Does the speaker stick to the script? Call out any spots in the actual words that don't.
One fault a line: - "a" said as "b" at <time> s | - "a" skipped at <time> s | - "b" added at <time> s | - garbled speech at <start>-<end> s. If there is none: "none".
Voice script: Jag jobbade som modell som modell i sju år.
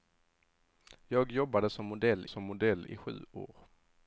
none